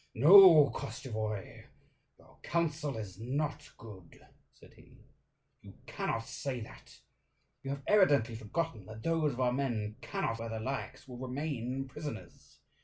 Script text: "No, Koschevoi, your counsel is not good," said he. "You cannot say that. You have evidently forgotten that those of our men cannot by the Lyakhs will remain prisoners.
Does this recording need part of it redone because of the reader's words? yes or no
no